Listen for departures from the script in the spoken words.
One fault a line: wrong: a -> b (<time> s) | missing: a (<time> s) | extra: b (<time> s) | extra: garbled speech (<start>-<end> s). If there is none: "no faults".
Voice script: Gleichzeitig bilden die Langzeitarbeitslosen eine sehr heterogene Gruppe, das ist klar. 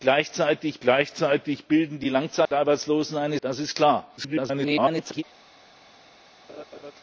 extra: gleichzeitig (0.8 s)
missing: sehr heterogene Gruppe (3.4 s)
extra: garbled speech (4.2-5.2 s)